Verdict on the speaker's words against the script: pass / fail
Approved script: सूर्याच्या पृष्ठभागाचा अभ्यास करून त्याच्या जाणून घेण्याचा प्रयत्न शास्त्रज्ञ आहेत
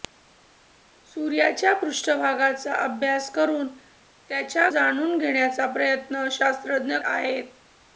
pass